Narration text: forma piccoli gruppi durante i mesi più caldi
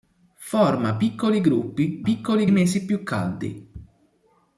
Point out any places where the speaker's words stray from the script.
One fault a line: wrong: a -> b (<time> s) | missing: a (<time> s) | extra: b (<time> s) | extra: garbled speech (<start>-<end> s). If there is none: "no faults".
wrong: durante -> piccoli (2.0 s)